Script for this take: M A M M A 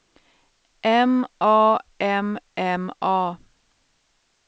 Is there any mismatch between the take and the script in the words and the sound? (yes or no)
no